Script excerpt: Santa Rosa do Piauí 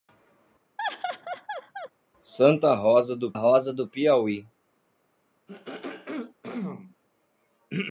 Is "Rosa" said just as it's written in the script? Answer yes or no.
yes